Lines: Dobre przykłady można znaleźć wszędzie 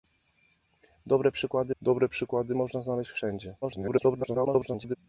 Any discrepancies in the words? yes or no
yes